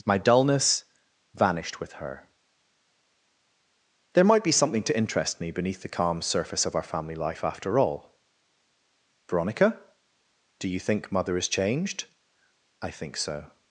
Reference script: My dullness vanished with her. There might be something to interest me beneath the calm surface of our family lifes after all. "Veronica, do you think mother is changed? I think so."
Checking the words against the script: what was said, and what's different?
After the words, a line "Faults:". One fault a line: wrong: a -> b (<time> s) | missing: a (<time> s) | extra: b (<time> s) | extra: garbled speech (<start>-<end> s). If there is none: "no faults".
My dullness vanished with her. There might be something to interest me beneath the calm surface of our family life after all. "Veronica, do you think mother is changed? I think so."
Faults:
wrong: lifes -> life (7.2 s)